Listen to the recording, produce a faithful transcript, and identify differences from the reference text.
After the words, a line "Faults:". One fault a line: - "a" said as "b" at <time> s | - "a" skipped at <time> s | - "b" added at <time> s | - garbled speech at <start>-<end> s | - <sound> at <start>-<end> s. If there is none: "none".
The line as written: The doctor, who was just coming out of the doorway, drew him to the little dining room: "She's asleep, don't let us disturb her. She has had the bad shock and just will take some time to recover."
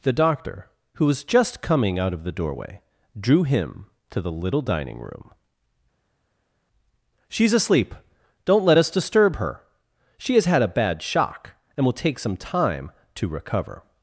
The doctor, who was just coming out of the doorway, drew him to the little dining room: "She's asleep, don't let us disturb her. She has had a bad shock and will take some time to recover."
Faults:
- "the" said as "a" at 10.6 s
- "just" skipped at 11.8 s